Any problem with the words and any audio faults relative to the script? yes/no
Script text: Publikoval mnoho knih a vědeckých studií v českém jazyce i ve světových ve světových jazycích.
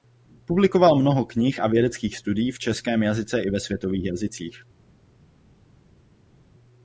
yes